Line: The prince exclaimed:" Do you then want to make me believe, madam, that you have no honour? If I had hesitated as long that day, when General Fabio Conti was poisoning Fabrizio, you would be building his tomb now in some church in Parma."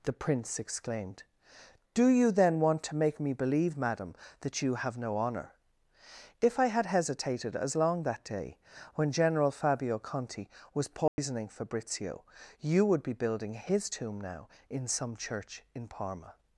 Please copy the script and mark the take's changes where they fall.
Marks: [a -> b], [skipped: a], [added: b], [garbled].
The prince exclaimed:" Do you then want to make me believe, madam, that you have no honour? If I had hesitated as long that day, when General Fabio Conti was poisoning Fabrizio, you would be building his tomb now in some church in Parma."